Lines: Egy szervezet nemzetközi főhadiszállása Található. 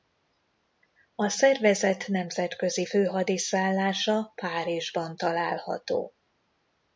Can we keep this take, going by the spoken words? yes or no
no